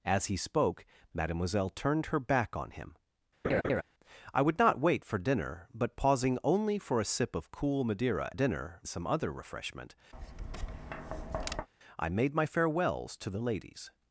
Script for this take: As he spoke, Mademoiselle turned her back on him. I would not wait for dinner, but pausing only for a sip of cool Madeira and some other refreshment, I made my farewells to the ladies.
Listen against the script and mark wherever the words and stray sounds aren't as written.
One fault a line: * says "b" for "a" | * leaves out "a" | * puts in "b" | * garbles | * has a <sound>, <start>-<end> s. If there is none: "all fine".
* has a laugh, 3.4-3.8 s
* says "dinner" for "and"
* has a tap, 10.1-11.7 s